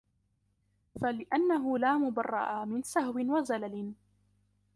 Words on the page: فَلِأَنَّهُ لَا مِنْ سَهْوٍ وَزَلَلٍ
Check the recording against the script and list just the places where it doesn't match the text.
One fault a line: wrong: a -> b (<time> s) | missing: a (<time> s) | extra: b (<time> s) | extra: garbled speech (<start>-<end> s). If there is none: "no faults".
extra: مُبَرَّأَ (2.0 s)